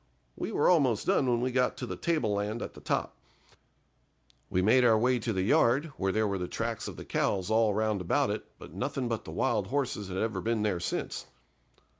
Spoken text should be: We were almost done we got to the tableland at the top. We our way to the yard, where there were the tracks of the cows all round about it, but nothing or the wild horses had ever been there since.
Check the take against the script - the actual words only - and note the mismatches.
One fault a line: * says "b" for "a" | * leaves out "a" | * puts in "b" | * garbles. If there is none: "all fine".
* puts in "when"
* puts in "made"
* says "but" for "or"